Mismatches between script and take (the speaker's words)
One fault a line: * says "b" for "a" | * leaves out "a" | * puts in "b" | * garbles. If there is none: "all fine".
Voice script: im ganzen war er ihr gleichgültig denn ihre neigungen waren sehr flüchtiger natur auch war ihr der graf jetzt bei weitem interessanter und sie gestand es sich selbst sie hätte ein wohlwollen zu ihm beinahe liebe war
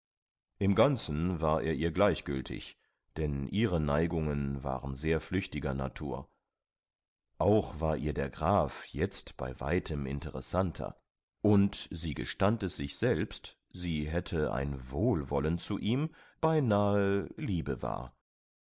all fine